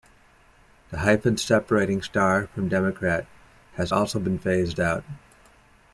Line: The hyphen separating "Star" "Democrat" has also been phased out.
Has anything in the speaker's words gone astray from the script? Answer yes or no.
yes